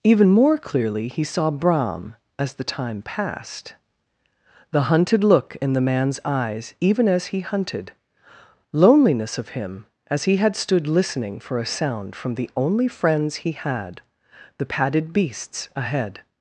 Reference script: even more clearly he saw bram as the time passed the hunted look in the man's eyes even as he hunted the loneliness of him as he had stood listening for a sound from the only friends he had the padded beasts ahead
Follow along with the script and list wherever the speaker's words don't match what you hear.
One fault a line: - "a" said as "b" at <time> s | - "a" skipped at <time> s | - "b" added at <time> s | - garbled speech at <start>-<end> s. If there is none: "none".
- "the" skipped at 7.9 s